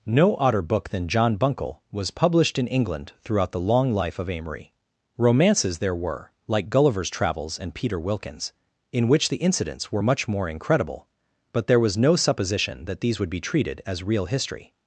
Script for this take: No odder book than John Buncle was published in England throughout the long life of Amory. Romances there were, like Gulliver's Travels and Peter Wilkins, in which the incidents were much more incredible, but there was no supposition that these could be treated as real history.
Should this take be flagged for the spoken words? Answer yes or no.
yes